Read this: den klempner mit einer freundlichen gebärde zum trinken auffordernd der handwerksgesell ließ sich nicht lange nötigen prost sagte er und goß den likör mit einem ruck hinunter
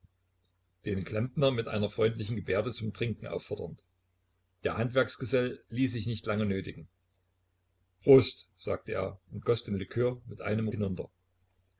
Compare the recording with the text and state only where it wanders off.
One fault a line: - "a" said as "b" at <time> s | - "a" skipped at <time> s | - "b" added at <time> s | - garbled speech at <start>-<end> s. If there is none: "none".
- "ruck" skipped at 10.7 s